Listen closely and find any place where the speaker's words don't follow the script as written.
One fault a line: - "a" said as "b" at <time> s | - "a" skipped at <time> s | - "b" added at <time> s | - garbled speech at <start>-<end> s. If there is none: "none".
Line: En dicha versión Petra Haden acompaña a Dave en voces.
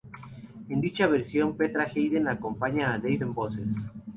none